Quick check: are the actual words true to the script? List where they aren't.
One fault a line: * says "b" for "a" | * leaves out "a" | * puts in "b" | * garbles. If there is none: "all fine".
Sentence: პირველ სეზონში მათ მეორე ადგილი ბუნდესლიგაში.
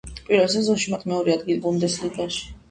all fine